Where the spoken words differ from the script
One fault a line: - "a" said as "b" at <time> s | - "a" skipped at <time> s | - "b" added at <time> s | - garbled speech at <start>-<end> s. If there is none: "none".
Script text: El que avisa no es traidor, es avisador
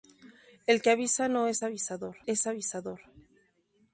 - "traidor" said as "avisador" at 1.6 s